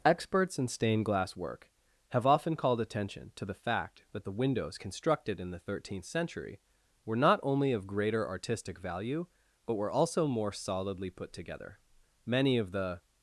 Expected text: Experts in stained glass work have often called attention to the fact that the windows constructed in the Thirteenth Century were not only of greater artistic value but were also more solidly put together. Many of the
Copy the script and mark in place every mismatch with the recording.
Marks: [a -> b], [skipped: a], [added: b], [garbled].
Experts in stained glass work have often called attention to the fact that the windows constructed in the Thirteenth Century were not only of greater artistic value but were also more solidly put together. Many of the